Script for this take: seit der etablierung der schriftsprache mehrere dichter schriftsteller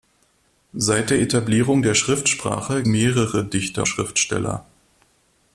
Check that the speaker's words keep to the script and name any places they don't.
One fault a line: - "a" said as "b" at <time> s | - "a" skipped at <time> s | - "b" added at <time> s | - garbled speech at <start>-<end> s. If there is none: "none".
none